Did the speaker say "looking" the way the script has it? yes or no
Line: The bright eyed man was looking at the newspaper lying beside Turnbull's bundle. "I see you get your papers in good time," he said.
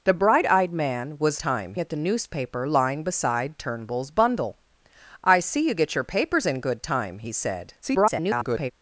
no